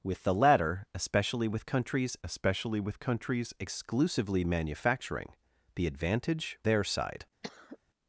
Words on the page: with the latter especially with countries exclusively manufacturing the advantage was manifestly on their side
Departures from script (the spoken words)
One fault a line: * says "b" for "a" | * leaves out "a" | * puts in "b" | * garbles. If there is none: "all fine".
* puts in "especially with countries"
* leaves out "was manifestly on"